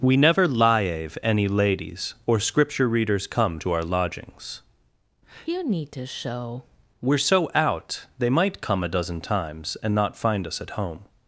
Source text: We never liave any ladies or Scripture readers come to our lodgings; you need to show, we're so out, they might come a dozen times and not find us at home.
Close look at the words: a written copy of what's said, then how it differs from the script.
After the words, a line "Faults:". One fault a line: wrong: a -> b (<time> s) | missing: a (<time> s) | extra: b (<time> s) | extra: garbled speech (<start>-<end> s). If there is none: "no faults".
We never liave any ladies or Scripture readers come to our lodgings; you need to show, we're so out, they might come a dozen times and not find us at home.
Faults:
no faults